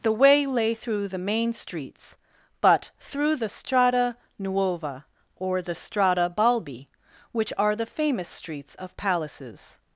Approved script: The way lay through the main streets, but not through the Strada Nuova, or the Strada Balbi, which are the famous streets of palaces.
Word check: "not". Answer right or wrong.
wrong